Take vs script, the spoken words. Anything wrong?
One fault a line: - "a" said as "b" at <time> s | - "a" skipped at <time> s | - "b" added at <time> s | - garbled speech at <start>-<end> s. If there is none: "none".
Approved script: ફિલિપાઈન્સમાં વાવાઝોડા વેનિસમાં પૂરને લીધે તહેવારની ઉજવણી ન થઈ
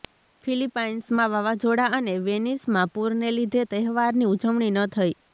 - "અને" added at 2.0 s